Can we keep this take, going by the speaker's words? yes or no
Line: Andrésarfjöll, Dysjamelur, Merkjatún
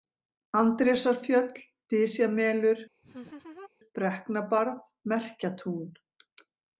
no